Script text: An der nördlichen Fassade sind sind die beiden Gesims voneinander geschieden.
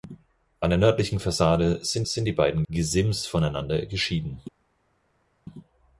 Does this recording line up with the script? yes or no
yes